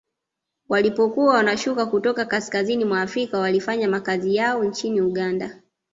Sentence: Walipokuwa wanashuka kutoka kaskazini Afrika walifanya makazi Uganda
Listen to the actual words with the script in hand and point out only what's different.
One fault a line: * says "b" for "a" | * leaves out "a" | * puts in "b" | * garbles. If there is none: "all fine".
* puts in "mwa"
* puts in "yao nchini"